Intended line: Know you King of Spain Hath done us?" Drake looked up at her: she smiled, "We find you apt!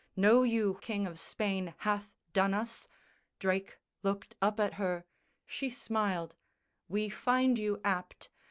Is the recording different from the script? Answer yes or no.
no